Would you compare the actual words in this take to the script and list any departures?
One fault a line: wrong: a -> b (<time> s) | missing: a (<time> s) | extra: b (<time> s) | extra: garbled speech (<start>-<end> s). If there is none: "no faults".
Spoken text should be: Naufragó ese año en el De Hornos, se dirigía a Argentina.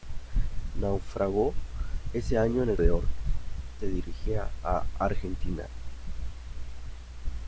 no faults